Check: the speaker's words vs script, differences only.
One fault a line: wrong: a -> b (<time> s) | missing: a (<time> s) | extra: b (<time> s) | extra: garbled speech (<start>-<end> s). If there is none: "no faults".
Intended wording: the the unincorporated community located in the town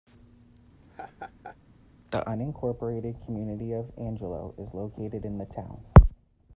missing: the (2.3 s)
extra: of angelo is (3.7 s)